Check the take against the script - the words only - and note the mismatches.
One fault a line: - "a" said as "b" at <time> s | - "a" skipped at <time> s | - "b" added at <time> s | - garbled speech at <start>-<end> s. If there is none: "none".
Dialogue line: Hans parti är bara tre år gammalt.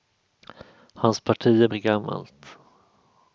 - "bara tre år" skipped at 1.7 s